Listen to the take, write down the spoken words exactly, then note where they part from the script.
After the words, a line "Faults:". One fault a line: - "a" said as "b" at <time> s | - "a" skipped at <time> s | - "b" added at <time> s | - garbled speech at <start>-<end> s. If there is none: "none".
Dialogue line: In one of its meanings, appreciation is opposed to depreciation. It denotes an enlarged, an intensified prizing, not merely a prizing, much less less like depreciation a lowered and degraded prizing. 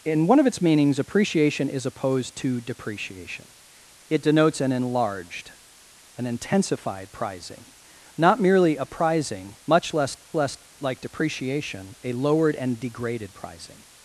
In one of its meanings, appreciation is opposed to depreciation. It denotes an enlarged, an intensified prizing, not merely a prizing, much less less like depreciation a lowered and degraded prizing.
Faults:
none